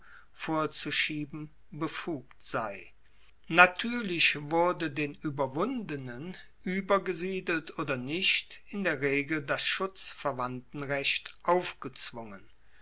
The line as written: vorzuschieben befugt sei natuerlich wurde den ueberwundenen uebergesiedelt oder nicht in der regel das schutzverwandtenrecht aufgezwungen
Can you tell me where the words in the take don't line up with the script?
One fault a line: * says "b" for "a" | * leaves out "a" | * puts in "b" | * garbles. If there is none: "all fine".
all fine